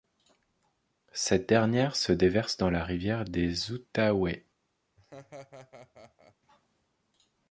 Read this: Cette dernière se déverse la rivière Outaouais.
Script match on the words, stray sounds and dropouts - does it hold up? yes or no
no